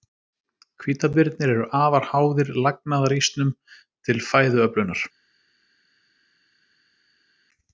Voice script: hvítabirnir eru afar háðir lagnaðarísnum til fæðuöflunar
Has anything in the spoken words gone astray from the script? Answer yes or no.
no